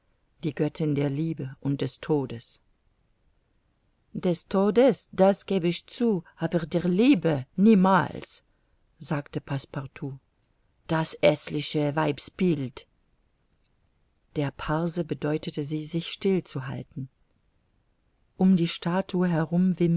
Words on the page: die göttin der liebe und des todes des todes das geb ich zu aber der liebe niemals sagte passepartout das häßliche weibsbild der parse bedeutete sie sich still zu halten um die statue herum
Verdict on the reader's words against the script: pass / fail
pass